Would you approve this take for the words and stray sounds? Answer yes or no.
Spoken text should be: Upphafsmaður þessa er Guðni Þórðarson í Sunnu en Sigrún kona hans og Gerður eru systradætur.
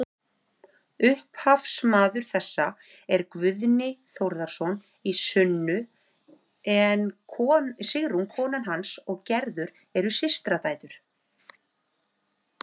yes